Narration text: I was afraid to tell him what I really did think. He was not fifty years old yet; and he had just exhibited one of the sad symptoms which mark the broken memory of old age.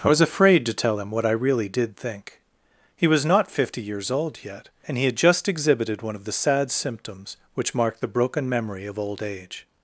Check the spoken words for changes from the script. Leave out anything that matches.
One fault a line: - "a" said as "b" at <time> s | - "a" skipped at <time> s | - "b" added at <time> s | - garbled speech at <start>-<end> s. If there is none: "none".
none